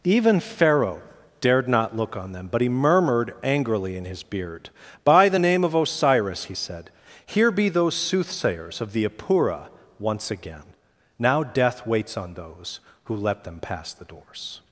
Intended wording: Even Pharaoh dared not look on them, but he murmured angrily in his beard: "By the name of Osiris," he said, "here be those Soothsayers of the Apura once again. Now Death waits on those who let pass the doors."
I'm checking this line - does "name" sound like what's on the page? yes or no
yes